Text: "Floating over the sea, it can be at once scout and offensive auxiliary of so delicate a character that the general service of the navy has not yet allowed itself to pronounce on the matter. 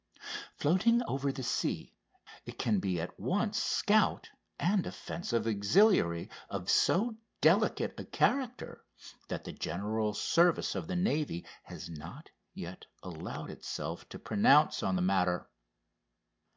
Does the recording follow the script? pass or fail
pass